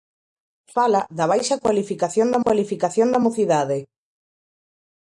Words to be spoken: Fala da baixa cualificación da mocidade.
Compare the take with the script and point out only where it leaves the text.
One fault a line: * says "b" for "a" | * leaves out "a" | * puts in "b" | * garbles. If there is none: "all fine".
* puts in "cualificación da"